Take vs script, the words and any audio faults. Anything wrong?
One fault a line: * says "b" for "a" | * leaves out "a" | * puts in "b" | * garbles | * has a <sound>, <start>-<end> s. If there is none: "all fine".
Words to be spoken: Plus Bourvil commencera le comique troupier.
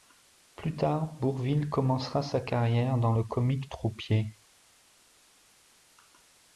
* puts in "tard"
* puts in "sa carrière dans"